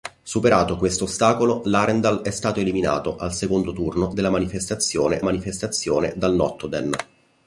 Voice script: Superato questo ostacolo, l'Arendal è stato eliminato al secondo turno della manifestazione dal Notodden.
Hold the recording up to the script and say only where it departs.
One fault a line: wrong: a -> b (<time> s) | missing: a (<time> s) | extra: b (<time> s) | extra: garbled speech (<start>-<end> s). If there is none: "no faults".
extra: manifestazione (5.2 s)